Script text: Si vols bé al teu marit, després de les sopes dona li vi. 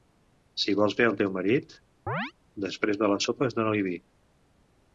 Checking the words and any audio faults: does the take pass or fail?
fail